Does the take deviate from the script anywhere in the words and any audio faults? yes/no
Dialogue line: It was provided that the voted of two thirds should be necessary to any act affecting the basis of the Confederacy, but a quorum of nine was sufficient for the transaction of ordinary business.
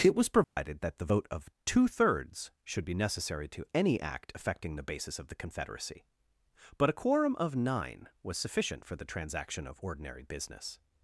yes